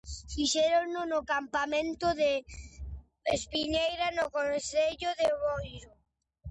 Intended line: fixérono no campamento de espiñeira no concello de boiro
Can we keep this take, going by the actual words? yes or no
yes